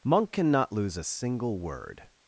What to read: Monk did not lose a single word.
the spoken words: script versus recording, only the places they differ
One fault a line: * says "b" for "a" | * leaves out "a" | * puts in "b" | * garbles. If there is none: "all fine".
* says "cannot" for "did not"